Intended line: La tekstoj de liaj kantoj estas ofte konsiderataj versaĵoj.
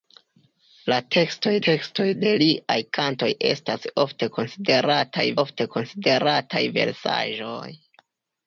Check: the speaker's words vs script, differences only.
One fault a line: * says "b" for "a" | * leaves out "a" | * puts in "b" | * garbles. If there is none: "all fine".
* puts in "tekstoj"
* puts in "ofte konsiderataj"